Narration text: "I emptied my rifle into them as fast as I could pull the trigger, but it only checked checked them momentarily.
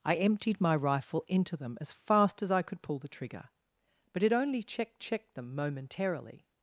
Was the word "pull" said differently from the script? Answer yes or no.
no